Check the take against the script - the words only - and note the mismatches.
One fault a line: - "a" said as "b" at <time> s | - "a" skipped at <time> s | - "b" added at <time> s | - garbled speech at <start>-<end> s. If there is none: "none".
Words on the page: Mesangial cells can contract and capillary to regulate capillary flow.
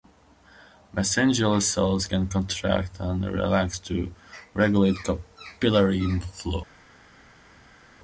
- "capillary" said as "relax" at 3.2 s